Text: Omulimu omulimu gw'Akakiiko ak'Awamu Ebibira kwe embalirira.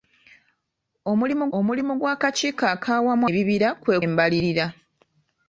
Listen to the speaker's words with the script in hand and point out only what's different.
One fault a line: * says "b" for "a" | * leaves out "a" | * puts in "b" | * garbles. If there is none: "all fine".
all fine